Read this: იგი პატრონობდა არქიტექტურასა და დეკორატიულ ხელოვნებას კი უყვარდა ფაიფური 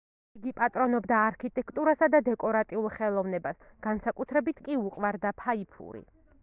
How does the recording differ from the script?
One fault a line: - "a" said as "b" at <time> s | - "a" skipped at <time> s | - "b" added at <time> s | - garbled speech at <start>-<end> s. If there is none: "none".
- "განსაკუთრებით" added at 3.9 s